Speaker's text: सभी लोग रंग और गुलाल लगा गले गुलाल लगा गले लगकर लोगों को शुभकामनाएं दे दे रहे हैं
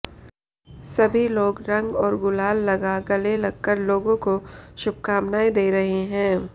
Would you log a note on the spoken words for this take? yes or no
yes